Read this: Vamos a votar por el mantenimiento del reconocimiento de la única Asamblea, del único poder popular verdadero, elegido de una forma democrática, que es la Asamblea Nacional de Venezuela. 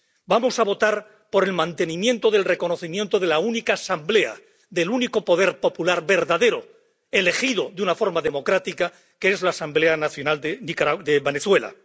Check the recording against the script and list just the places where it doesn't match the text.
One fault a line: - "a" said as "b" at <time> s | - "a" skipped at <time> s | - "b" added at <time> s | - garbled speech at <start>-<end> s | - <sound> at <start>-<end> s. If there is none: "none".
none